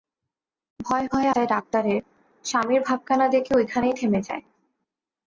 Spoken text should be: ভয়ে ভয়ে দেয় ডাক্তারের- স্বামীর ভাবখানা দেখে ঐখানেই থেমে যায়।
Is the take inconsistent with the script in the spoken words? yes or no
no